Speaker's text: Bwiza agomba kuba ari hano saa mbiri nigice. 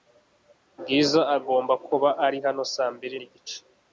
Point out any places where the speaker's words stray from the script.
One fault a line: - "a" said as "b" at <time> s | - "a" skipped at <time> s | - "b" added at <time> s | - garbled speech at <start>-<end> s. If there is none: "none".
none